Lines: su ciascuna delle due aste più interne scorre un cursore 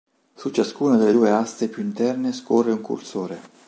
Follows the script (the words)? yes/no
yes